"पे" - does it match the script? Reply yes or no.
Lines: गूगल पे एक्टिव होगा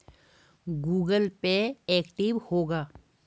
yes